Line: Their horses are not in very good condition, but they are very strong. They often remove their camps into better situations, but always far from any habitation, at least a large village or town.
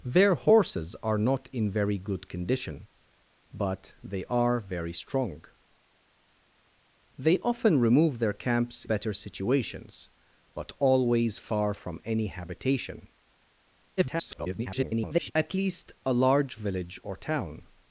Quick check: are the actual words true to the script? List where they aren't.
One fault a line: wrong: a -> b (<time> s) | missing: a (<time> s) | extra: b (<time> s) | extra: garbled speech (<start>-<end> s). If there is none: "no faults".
missing: into (8.8 s)
extra: garbled speech (14.0-15.3 s)